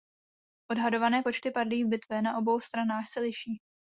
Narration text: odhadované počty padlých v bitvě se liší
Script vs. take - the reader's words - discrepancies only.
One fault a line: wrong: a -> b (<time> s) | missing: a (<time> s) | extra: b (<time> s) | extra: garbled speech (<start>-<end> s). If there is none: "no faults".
extra: na obou stranách (2.2 s)